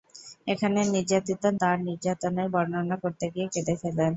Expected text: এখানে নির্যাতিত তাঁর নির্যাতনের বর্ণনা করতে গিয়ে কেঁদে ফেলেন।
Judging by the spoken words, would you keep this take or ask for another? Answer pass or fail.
pass